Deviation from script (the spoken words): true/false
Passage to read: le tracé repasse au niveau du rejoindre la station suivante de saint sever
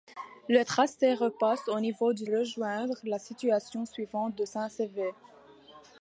false